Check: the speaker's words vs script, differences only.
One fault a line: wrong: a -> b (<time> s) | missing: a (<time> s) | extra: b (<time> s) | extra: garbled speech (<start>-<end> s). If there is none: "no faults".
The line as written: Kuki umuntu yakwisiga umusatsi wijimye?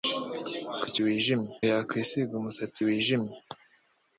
wrong: umuntu -> wijimye (1.0 s)